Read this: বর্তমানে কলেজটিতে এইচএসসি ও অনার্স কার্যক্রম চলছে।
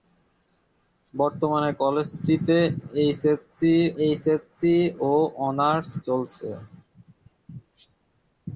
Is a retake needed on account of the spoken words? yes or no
yes